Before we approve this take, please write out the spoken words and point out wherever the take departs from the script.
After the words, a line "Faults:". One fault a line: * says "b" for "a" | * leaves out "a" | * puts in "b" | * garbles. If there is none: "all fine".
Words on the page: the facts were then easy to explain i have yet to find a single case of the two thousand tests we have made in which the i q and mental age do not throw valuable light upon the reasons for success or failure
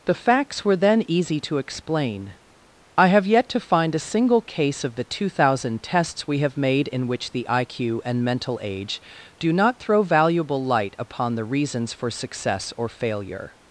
the facts were then easy to explain i have yet to find a single case of the two thousand tests we have made in which the i q and mental age do not throw valuable light upon the reasons for success or failure
Faults:
all fine